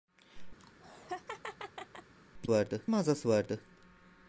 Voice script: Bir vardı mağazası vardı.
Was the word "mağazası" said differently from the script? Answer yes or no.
no